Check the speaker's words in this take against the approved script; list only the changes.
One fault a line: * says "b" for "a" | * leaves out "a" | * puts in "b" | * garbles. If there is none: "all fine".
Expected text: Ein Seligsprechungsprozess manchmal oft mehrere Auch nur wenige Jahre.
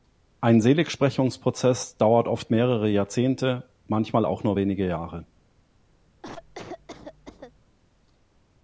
* says "dauert" for "manchmal"
* puts in "Jahrzehnte manchmal"